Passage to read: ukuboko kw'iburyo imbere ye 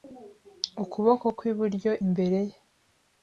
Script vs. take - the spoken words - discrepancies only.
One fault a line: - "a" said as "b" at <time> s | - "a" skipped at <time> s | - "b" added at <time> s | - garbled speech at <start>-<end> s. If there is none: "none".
none